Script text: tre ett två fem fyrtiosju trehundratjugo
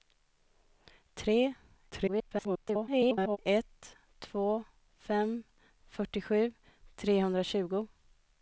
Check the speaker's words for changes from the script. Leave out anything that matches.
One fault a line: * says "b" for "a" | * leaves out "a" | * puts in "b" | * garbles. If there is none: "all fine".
* garbles